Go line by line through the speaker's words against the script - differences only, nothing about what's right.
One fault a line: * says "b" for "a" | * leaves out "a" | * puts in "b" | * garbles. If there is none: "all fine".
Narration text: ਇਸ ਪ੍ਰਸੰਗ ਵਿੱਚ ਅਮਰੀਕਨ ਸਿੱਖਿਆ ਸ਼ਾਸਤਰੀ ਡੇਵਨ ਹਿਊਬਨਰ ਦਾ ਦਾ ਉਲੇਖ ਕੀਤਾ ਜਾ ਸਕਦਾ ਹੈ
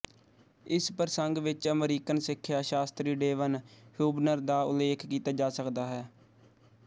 * leaves out "ਦਾ"